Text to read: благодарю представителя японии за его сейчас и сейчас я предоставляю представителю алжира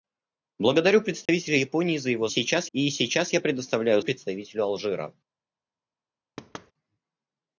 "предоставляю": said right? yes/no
yes